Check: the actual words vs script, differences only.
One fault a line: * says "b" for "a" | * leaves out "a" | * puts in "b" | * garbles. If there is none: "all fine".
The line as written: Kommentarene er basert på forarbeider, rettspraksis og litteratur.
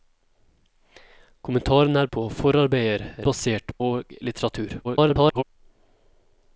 * leaves out "basert"
* says "basert" for "rettspraksis"
* garbles